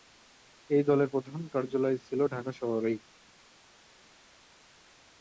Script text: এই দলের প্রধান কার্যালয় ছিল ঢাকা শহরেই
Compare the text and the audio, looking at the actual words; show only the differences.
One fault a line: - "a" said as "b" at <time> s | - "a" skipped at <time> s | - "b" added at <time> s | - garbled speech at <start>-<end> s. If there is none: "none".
none